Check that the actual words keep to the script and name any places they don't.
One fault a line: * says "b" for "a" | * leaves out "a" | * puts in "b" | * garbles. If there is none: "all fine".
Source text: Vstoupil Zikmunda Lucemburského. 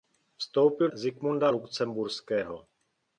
all fine